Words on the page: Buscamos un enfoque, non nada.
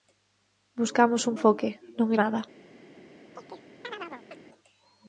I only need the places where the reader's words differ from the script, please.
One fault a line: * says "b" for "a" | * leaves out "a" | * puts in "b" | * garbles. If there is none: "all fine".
all fine